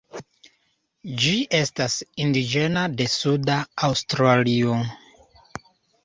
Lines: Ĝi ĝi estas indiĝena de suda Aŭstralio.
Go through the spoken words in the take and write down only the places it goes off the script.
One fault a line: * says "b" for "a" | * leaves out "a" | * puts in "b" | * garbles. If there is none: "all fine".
* leaves out "ĝi"